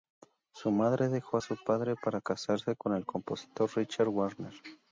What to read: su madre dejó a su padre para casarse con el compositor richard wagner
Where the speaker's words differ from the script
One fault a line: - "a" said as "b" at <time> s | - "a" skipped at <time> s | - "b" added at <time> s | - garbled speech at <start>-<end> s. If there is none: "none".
none